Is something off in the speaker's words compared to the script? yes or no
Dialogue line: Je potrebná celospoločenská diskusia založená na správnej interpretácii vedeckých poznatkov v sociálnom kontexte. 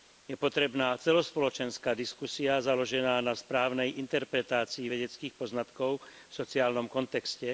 no